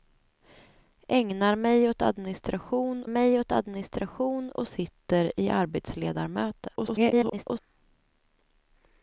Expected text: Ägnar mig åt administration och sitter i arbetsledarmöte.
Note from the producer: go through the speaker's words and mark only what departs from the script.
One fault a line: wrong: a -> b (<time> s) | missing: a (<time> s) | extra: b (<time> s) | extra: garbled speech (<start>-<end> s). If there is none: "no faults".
extra: mig åt administration (3.1 s)
extra: garbled speech (6.8-7.6 s)